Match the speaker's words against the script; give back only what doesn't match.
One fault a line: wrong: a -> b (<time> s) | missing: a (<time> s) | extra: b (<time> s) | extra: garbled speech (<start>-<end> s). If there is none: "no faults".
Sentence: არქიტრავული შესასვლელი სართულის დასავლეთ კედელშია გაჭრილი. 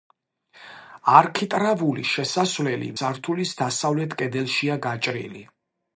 no faults